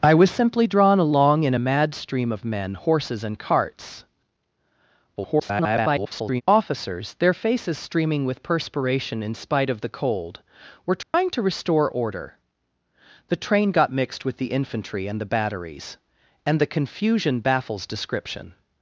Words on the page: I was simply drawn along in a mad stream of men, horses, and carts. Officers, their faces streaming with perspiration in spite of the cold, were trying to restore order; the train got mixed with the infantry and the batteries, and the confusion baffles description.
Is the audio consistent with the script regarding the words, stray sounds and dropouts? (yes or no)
no